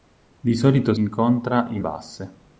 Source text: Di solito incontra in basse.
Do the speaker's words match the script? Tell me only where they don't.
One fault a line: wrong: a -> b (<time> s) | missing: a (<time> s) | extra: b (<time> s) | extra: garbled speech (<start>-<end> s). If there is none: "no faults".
no faults